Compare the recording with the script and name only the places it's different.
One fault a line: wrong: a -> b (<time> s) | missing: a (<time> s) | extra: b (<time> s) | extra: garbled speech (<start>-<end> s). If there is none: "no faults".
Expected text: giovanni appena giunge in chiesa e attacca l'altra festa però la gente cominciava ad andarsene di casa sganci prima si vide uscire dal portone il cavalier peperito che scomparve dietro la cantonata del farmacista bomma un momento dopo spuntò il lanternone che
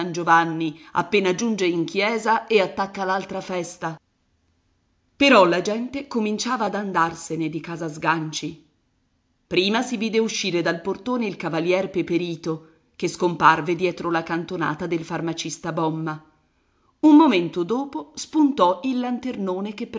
no faults